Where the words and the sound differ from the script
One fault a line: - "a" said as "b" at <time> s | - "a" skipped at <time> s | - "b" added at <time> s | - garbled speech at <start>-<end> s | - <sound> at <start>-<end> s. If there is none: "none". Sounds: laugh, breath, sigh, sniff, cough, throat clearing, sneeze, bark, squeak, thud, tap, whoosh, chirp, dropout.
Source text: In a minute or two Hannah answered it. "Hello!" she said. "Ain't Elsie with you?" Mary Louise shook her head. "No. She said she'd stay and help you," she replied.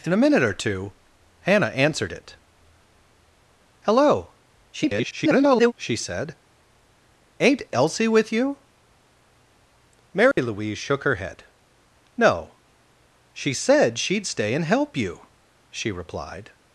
- garbled speech at 4.7-5.7 s
- dropout at 10.3-10.4 s